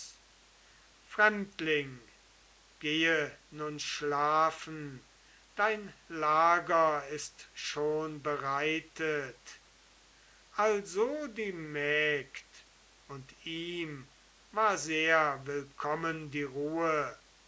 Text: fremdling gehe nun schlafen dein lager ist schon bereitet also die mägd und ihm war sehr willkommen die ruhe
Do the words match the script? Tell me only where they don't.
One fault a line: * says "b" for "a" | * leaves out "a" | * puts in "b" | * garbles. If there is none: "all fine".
all fine